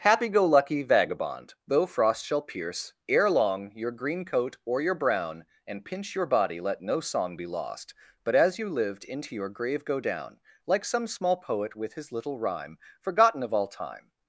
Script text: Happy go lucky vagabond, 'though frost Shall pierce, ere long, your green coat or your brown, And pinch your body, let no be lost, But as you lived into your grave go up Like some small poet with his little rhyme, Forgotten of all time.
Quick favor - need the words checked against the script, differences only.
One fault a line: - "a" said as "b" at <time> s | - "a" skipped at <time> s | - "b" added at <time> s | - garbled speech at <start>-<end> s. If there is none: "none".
- "song" added at 7.0 s
- "up" said as "down" at 10.0 s